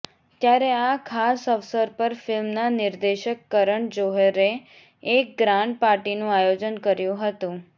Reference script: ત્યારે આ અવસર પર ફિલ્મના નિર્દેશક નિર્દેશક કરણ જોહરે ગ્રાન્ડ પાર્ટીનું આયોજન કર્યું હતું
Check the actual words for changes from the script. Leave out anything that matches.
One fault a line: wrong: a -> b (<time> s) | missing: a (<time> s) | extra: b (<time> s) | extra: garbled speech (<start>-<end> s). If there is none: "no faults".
extra: ખાસ (1.1 s)
missing: નિર્દેશક (3.4 s)
extra: એક (5.0 s)